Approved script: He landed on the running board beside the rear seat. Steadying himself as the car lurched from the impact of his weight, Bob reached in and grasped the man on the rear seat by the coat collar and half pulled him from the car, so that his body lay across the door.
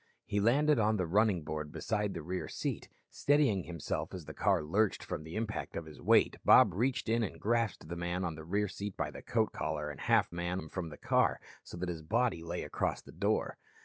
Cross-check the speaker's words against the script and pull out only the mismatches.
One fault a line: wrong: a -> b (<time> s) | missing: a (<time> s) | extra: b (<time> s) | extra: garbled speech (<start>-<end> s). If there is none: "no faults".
wrong: pulled -> man (10.3 s)